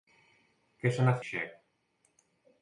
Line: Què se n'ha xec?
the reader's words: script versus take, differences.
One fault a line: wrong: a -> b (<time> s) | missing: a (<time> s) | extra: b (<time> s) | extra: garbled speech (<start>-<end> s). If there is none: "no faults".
no faults